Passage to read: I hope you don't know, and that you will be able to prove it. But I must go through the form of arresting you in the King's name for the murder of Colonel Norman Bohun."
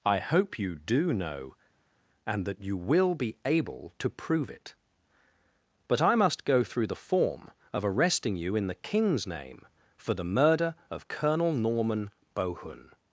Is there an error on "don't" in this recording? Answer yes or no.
yes